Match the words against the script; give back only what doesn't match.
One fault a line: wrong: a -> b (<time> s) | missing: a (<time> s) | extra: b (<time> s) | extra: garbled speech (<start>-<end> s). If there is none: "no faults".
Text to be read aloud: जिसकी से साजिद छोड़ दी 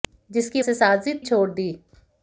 no faults